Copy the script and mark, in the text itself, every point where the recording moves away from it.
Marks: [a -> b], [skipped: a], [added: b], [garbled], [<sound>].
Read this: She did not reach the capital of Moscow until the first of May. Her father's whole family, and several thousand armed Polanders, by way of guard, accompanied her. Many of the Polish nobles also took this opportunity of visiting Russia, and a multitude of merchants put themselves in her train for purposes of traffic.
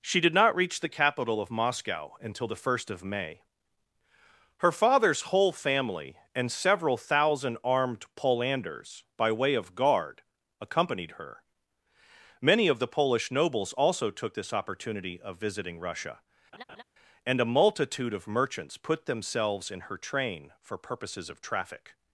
She did not reach the capital of Moscow until the first of May. Her father's whole family, and several thousand armed Polanders, by way of guard, accompanied her. Many of the Polish nobles also took this opportunity of visiting Russia, [laugh] and a multitude of merchants put themselves in her train for purposes of traffic.